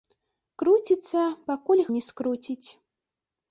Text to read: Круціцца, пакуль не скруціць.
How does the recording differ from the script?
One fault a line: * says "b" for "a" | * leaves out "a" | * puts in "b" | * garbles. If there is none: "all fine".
all fine